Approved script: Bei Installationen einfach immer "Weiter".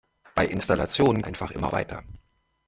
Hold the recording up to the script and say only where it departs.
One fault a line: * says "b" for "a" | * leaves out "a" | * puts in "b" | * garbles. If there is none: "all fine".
all fine